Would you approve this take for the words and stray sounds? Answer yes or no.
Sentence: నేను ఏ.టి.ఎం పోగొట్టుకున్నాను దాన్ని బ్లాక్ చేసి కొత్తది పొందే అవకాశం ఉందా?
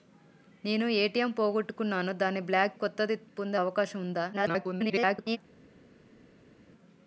no